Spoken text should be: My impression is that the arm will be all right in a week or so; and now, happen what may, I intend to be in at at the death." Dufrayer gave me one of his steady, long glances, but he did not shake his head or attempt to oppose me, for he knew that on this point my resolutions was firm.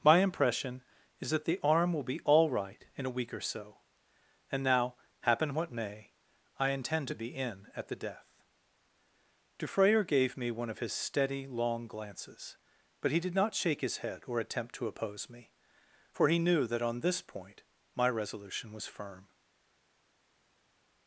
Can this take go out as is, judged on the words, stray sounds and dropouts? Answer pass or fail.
fail